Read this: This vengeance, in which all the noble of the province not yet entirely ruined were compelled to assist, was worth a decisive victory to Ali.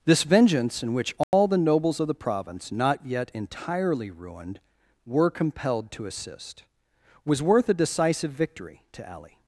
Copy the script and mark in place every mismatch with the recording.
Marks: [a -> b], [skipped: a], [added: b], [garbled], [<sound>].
This vengeance, in which all [dropout] the [noble -> nobles] of the province not yet entirely ruined were compelled to assist, was worth a decisive victory to Ali.